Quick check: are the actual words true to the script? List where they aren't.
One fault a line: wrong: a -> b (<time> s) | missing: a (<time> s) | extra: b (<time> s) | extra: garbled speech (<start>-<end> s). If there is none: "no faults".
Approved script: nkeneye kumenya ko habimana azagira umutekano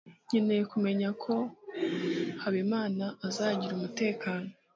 no faults